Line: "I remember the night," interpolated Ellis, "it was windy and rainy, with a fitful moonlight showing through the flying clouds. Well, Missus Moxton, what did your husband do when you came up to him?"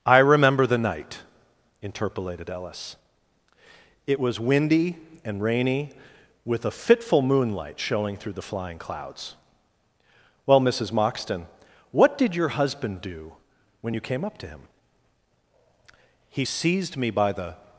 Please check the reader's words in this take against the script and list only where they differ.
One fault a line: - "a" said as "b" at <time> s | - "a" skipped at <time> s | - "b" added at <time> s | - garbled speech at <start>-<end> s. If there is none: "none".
- "He seized me by the" added at 16.3 s